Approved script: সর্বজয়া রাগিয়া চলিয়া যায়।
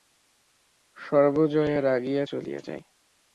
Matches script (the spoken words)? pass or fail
pass